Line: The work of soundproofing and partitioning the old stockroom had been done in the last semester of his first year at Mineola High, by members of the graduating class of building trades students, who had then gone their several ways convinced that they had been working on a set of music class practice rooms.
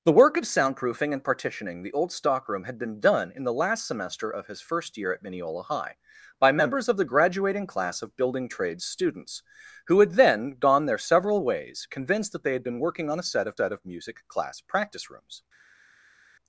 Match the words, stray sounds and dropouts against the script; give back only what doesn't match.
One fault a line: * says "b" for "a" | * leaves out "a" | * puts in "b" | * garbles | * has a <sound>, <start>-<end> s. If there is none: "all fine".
* puts in "set of"